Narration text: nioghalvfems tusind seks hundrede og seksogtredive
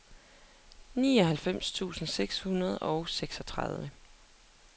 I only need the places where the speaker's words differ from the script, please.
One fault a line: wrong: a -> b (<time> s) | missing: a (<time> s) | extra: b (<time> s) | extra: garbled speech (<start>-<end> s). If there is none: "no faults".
no faults